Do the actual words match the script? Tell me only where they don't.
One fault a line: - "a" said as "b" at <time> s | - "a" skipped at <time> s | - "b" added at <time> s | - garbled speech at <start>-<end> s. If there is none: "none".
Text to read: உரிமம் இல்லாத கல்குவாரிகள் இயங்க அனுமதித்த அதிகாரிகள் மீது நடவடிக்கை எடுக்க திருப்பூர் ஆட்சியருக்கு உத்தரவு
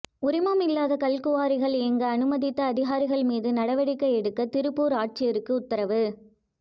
none